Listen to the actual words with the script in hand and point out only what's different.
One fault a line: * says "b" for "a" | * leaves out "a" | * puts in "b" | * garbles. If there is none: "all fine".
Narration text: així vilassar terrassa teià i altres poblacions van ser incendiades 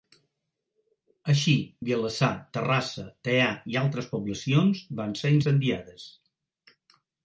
all fine